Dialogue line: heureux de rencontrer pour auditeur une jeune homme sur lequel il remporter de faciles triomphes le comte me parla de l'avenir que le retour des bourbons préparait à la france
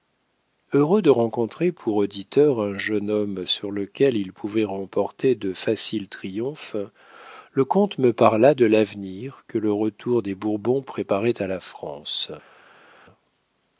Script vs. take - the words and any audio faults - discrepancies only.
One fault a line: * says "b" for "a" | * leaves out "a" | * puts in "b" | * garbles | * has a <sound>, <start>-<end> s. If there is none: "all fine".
* says "un" for "une"
* puts in "pouvait"